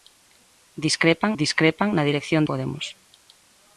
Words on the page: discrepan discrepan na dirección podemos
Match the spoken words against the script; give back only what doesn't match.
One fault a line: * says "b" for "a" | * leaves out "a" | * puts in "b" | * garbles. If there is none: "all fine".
all fine